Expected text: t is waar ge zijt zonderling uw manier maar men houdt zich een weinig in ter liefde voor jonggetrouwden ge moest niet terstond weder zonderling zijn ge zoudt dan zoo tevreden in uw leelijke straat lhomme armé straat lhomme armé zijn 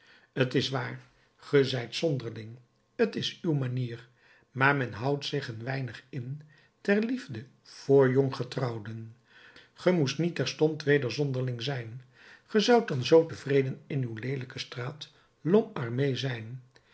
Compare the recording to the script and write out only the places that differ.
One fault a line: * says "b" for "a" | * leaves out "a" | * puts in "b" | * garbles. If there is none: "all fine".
* puts in "t is"
* leaves out "straat lhomme armé"